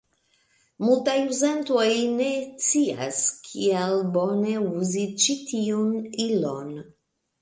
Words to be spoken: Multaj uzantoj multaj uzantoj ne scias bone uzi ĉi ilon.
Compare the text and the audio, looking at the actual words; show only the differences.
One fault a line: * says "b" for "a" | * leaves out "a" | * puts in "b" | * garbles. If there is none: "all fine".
* leaves out "multaj uzantoj"
* puts in "kiel"
* puts in "tiun"